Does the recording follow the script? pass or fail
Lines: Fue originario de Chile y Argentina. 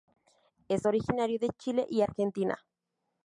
fail